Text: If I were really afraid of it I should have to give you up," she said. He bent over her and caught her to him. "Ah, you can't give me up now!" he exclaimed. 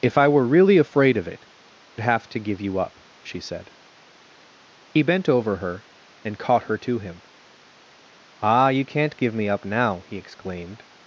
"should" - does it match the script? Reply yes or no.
no